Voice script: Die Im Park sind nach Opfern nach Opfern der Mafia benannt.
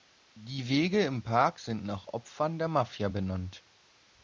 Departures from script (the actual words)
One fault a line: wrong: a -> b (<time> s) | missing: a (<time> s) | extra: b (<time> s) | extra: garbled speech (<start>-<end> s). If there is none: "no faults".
extra: Wege (0.7 s)
missing: nach Opfern (2.6 s)